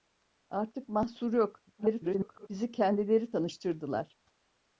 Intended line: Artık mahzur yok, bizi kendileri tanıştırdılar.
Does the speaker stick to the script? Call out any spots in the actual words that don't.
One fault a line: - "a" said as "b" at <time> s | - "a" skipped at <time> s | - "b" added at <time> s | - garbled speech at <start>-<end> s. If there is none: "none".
- garbled speech at 1.8-2.5 s